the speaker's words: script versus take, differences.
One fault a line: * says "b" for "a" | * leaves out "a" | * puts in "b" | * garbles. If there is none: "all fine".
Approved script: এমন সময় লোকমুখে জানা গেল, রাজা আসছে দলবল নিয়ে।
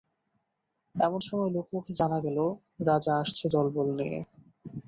all fine